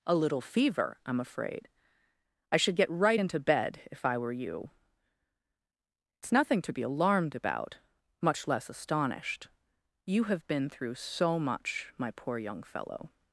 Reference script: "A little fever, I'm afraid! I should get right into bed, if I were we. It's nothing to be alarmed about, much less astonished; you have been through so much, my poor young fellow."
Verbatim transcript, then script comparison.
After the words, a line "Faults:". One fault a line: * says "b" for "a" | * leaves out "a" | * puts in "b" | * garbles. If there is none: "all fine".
"A little fever, I'm afraid! I should get right into bed, if I were you. It's nothing to be alarmed about, much less astonished; you have been through so much, my poor young fellow."
Faults:
* says "you" for "we"